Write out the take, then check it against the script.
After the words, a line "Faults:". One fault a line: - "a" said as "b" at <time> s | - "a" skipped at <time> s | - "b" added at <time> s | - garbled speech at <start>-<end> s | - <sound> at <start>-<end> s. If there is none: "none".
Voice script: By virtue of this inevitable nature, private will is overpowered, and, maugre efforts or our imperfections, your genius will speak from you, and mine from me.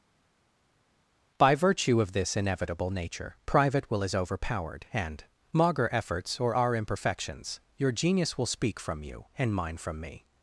By virtue of this inevitable nature, private will is overpowered, and, maugre efforts or our imperfections, your genius will speak from you, and mine from me.
Faults:
none